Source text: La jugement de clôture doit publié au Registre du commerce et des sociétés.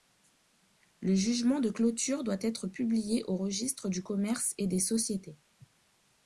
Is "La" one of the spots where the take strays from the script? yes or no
yes